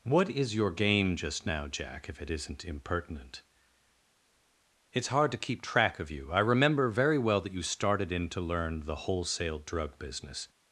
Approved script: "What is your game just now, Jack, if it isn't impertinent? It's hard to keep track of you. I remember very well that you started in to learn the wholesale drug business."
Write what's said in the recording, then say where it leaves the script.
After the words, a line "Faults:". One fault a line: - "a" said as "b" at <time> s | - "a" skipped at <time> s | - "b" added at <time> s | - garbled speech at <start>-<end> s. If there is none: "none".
"What is your game just now, Jack, if it isn't impertinent? It's hard to keep track of you. I remember very well that you started in to learn the wholesale drug business."
Faults:
none